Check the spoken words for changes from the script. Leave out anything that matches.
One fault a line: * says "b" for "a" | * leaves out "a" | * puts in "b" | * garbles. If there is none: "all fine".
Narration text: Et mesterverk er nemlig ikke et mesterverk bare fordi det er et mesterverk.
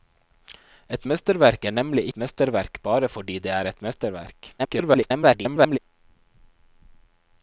* leaves out "ikke"
* garbles